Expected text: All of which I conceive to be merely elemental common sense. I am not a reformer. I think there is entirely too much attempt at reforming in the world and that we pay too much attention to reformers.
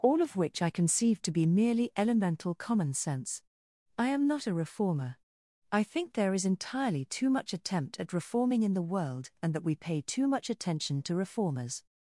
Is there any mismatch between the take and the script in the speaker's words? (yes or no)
no